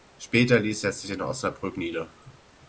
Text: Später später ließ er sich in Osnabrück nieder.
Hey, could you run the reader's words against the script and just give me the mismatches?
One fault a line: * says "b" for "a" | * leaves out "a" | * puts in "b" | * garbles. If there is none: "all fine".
* leaves out "später"